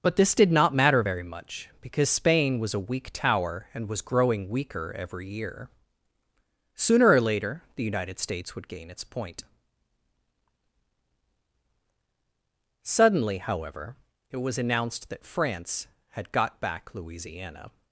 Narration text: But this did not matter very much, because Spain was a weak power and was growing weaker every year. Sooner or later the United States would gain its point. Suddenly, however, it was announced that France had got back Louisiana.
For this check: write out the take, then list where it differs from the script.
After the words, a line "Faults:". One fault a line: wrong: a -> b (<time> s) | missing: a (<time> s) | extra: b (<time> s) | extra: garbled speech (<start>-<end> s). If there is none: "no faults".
But this did not matter very much, because Spain was a weak tower and was growing weaker every year. Sooner or later the United States would gain its point. Suddenly, however, it was announced that France had got back Louisiana.
Faults:
wrong: power -> tower (3.1 s)